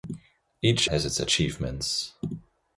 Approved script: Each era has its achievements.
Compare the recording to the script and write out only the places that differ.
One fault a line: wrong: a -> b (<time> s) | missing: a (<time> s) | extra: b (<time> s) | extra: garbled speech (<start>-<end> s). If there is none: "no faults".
missing: era (0.9 s)